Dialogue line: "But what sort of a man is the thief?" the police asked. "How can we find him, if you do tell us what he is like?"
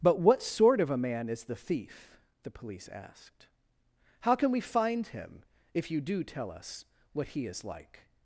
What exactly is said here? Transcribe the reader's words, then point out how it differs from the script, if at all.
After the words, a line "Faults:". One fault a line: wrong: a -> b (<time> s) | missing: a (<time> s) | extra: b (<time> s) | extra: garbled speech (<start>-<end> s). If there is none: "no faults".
"But what sort of a man is the thief?" the police asked. "How can we find him, if you do tell us what he is like?"
Faults:
no faults